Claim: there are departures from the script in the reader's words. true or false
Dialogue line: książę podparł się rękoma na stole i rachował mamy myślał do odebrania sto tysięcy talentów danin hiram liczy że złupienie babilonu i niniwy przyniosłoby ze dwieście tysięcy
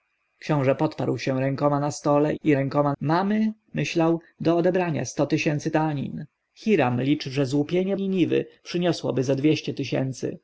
true